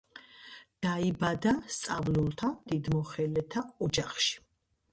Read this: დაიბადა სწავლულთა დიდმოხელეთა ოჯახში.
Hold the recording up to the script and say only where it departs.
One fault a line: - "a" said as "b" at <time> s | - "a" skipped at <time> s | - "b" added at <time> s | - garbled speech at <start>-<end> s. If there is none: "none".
none